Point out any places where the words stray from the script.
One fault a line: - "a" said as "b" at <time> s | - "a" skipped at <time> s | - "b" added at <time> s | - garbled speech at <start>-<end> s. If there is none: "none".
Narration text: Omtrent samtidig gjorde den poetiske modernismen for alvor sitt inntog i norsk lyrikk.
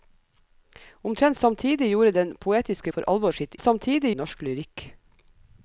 - "modernismen" skipped at 2.9 s
- "inntog" said as "samtidig" at 3.6 s